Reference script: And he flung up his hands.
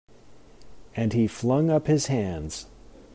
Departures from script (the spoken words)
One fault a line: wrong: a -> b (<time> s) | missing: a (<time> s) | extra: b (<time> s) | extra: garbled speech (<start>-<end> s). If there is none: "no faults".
no faults